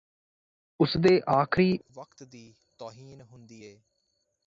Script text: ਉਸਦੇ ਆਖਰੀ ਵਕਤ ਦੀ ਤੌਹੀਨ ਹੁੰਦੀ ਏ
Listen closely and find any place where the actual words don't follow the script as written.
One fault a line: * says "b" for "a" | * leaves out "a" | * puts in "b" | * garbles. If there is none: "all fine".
all fine